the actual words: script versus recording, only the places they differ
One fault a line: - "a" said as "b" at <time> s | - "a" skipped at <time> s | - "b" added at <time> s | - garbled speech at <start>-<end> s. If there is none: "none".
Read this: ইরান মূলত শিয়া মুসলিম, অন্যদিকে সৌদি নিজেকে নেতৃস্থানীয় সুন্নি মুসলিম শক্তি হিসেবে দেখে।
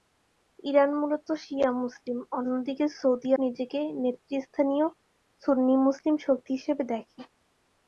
none